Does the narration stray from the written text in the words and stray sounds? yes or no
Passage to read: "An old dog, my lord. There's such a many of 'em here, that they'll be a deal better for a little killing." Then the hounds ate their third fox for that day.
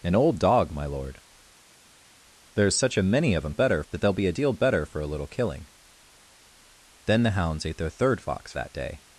yes